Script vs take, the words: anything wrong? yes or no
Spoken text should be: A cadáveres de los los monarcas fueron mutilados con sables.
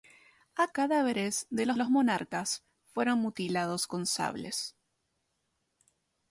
no